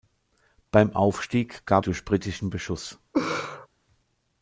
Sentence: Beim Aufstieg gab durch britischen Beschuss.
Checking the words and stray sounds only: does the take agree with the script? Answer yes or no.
no